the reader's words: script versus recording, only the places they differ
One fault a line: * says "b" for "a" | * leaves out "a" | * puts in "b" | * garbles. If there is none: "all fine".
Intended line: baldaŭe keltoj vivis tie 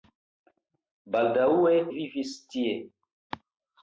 * leaves out "keltoj"